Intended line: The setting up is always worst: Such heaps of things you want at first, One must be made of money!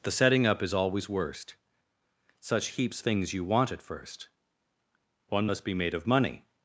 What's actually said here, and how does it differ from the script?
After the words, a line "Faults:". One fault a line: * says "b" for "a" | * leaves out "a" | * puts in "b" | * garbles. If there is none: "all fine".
The setting up is always worst: Such heaps things you want at first, One must be made of money!
Faults:
* leaves out "of"